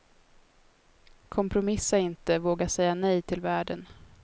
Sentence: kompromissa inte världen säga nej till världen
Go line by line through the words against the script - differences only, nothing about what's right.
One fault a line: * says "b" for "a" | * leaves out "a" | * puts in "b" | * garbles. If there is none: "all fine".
* says "våga" for "världen"